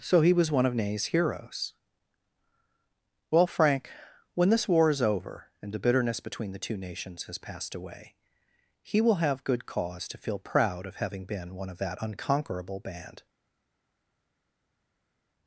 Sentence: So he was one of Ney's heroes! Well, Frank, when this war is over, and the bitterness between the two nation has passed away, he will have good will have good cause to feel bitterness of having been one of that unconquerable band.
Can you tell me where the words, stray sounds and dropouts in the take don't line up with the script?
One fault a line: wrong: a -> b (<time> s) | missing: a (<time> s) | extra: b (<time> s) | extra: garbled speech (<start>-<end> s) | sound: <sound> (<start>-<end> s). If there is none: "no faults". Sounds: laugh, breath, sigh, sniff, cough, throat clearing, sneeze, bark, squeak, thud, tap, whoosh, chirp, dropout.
wrong: nation -> nations (6.8 s)
missing: will have good (9.7 s)
wrong: bitterness -> proud (10.4 s)